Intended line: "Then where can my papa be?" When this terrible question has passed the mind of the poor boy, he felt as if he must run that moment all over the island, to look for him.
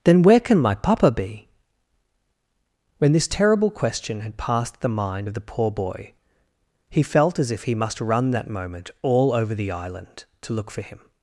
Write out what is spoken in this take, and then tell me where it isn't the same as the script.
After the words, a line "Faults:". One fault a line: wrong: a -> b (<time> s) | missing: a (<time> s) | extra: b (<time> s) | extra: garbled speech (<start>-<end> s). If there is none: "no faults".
"Then where can my papa be?" When this terrible question had passed the mind of the poor boy, he felt as if he must run that moment all over the island, to look for him.
Faults:
wrong: has -> had (4.2 s)